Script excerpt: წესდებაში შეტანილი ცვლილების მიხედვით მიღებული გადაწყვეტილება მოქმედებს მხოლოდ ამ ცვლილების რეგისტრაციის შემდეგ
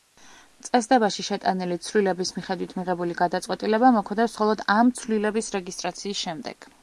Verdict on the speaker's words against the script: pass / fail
pass